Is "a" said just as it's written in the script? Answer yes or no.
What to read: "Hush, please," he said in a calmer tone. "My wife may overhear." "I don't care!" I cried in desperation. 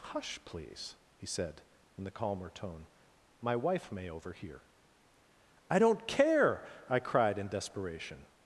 no